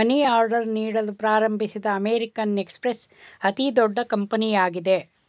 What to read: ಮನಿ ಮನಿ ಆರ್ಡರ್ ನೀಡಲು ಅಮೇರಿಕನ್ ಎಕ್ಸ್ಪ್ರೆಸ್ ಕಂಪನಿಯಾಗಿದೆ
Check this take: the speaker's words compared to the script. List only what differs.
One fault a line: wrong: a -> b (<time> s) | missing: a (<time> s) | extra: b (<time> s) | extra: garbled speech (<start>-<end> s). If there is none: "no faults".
missing: ಮನಿ (0.1 s)
extra: ಪ್ರಾರಂಭಿಸಿದ (1.2 s)
extra: ಅತಿದೊಡ್ಡ (3.4 s)